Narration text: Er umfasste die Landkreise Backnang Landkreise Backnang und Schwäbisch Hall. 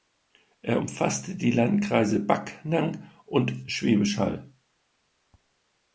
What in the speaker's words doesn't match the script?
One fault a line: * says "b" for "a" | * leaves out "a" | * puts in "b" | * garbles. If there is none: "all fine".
* leaves out "Landkreise Backnang"